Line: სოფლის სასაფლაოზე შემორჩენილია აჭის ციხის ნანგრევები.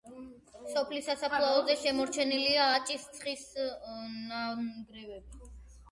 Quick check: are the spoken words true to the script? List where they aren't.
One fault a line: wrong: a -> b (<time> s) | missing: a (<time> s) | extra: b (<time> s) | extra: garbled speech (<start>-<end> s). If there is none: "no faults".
no faults